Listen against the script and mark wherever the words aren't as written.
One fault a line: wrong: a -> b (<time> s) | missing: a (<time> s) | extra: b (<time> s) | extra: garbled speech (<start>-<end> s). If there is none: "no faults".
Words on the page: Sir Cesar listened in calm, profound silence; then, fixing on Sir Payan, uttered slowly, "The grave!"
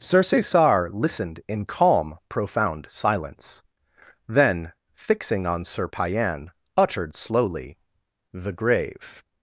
no faults